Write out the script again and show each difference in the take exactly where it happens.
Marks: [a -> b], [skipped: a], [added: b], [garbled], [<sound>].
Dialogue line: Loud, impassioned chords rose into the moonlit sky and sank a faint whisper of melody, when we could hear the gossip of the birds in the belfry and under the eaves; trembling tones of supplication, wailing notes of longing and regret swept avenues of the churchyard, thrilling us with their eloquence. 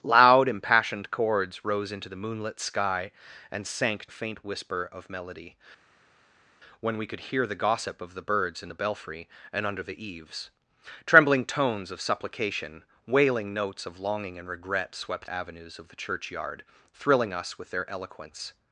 Loud, impassioned chords rose into the moonlit sky and sank a faint whisper of melody, when we could hear the gossip of the birds in the belfry and under the eaves; trembling tones of supplication, wailing notes of longing and regret swept avenues of the churchyard, thrilling us with their eloquence.